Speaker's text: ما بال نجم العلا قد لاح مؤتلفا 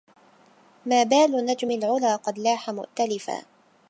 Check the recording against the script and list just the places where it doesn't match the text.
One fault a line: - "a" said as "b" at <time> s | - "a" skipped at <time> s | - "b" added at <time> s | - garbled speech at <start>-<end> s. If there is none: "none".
none